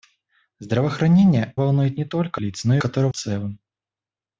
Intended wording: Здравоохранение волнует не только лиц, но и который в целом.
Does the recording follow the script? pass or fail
pass